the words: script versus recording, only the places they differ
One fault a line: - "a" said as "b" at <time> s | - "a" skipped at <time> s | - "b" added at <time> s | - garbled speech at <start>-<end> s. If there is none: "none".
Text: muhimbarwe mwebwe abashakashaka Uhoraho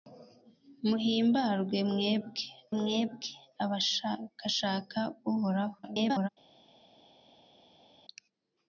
- "mwebwe" added at 2.8 s
- garbled speech at 5.8-6.3 s